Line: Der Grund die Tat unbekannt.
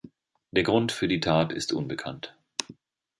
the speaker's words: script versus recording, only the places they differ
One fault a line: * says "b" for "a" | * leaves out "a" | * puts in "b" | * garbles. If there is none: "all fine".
* puts in "für"
* puts in "ist"